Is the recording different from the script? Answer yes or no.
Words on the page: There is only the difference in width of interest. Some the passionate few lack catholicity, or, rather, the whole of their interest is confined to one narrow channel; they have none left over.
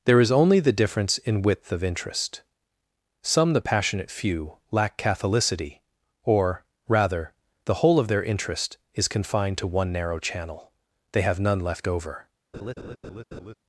no